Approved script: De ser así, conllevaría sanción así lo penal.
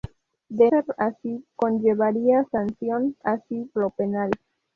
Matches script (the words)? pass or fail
pass